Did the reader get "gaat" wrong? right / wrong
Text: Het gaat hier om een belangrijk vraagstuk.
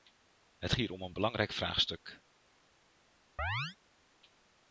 wrong